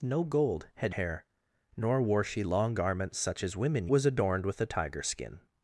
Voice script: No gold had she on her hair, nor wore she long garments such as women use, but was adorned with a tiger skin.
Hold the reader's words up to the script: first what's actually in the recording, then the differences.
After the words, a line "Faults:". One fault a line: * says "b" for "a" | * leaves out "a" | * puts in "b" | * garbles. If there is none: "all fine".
No gold had hair, nor wore she long garments such as women was adorned with a tiger skin.
Faults:
* leaves out "she on her"
* leaves out "use but"